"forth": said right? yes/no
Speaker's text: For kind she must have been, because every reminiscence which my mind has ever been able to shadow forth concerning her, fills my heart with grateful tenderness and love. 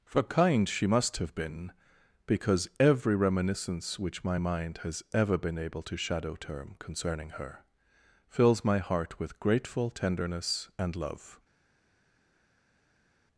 no